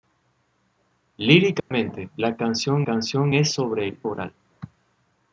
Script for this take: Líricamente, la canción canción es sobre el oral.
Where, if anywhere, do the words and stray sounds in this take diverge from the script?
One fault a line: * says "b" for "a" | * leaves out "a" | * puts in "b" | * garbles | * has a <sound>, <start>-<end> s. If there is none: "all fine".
* has a dropout, 1.6-1.7 s